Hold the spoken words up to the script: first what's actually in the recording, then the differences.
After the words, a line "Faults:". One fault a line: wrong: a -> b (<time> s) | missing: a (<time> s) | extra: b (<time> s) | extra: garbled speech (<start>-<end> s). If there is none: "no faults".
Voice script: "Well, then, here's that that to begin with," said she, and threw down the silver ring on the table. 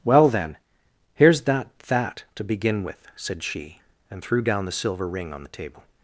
"Well, then, here's that that to begin with," said she, and threw down the silver ring on the table.
Faults:
no faults